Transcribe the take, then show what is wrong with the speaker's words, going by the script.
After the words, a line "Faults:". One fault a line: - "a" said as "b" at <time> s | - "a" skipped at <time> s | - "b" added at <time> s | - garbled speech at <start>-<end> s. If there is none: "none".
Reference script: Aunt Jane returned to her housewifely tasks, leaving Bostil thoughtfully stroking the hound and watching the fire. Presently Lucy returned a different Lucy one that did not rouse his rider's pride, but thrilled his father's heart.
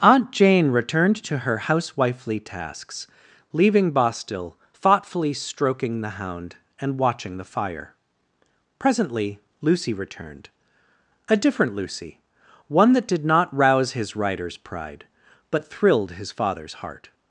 Aunt Jane returned to her housewifely tasks, leaving Bostil thoughtfully stroking the hound and watching the fire. Presently Lucy returned a different Lucy one that did not rouse his rider's pride, but thrilled his father's heart.
Faults:
none